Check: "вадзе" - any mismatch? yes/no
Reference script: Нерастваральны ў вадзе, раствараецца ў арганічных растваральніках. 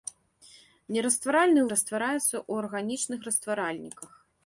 yes